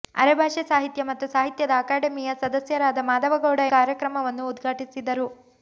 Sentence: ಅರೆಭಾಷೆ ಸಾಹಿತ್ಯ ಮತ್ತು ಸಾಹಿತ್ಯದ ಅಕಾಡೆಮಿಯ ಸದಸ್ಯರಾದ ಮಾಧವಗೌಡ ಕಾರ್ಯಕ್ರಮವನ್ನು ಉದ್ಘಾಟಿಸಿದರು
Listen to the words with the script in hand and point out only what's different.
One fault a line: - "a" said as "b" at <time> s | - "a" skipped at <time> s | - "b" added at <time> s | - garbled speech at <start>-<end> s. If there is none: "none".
none